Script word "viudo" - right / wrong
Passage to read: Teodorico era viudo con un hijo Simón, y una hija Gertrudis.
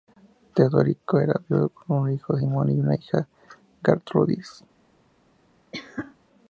right